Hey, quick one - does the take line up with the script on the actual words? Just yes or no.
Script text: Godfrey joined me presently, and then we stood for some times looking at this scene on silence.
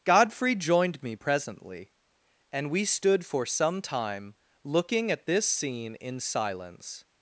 no